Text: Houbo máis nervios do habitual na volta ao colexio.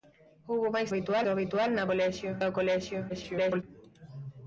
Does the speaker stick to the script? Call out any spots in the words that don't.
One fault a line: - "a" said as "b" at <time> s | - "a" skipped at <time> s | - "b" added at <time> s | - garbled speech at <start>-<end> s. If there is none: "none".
- "nervios" said as "habitual" at 0.9 s
- "volta" said as "colexio" at 1.9 s
- garbled speech at 3.1-3.6 s